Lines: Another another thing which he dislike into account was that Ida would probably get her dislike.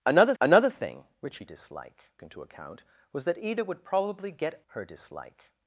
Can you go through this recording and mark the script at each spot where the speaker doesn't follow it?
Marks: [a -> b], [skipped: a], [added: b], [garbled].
Another another thing which he dislike into account was that Ida would probably get her dislike.